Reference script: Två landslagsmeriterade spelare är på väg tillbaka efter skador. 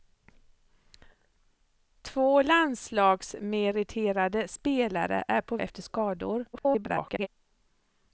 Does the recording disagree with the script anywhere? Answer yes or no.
yes